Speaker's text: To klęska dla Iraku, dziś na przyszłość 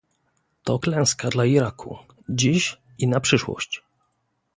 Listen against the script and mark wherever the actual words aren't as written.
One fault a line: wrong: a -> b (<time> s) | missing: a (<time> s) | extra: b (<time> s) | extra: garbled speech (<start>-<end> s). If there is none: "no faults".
extra: i (3.0 s)